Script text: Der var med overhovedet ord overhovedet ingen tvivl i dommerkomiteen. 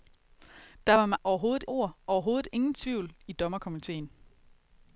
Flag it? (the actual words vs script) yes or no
no